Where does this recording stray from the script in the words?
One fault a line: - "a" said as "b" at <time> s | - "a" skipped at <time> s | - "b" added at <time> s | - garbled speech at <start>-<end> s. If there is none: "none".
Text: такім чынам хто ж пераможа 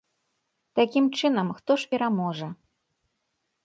none